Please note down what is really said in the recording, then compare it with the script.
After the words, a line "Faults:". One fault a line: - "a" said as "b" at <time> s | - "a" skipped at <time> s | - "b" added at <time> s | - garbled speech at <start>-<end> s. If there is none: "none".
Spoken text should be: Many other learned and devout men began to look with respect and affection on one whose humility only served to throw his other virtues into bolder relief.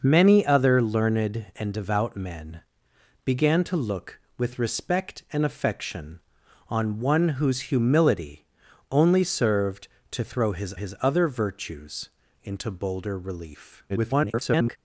Many other learned and devout men began to look with respect and affection on one whose humility only served to throw his his other virtues into bolder relief. [garbled]
Faults:
- "his" added at 10.7 s
- garbled speech at 13.9-14.8 s